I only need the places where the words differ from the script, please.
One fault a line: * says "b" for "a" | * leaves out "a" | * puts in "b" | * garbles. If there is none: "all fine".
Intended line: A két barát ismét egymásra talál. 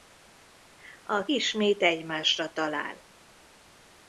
* leaves out "két barát"